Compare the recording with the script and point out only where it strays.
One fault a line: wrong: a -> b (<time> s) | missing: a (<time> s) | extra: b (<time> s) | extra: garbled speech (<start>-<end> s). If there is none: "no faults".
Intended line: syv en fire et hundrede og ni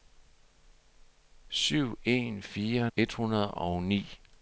no faults